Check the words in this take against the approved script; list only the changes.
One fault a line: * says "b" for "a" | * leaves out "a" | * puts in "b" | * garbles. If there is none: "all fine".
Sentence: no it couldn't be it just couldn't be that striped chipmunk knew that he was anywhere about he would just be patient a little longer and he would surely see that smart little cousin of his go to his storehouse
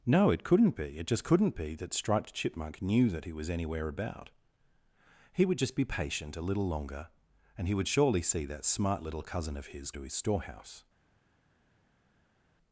* leaves out "go"